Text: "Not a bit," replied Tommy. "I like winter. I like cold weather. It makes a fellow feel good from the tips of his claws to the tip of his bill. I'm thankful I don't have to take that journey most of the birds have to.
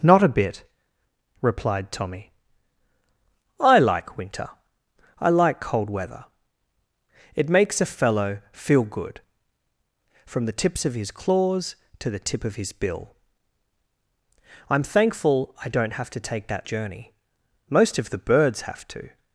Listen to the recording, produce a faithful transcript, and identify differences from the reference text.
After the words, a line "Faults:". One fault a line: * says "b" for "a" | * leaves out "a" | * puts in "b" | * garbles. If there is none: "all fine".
"Not a bit," replied Tommy. "I like winter. I like cold weather. It makes a fellow feel good from the tips of his claws to the tip of his bill. I'm thankful I don't have to take that journey most of the birds have to.
Faults:
all fine